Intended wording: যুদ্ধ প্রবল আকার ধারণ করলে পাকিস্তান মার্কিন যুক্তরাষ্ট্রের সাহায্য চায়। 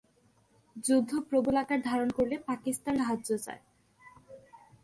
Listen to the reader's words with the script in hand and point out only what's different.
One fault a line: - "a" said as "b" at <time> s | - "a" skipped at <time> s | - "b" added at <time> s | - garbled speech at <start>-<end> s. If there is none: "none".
- "মার্কিন যুক্তরাষ্ট্রের" skipped at 3.0 s